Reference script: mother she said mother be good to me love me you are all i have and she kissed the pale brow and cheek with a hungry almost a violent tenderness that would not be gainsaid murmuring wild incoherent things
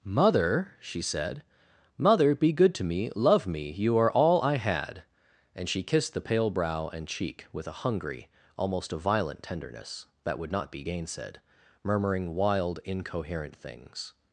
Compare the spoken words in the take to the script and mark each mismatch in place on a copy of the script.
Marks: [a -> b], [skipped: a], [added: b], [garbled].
mother she said mother be good to me love me you are all i [have -> had] and she kissed the pale brow and cheek with a hungry almost a violent tenderness that would not be gainsaid murmuring wild incoherent things